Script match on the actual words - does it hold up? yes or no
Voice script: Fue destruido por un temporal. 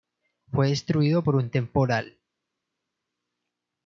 yes